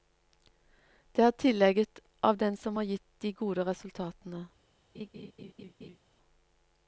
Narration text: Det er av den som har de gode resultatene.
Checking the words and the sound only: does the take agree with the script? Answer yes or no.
no